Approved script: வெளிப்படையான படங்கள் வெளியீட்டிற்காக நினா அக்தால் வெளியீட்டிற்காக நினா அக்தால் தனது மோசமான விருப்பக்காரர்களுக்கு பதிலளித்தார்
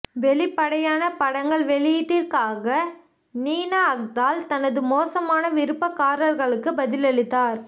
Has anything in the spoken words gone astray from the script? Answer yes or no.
yes